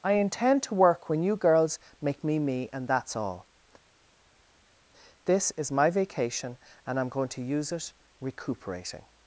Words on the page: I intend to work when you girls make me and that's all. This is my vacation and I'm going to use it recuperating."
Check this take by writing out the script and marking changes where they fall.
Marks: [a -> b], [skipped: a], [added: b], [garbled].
I intend to work when you girls make me [added: me] and that's all. This is my vacation and I'm going to use it recuperating."